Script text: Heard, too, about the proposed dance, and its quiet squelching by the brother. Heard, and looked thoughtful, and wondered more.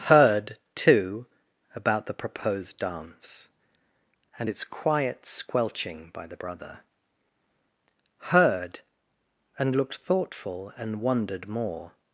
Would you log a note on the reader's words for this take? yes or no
no